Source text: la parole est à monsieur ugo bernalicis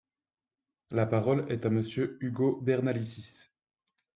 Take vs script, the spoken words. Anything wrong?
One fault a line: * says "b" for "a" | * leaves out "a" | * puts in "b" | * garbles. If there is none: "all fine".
all fine